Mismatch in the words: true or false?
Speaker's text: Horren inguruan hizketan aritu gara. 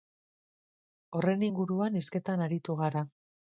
false